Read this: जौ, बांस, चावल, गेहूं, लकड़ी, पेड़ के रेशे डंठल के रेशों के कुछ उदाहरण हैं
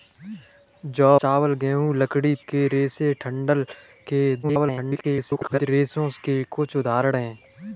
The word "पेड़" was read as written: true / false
false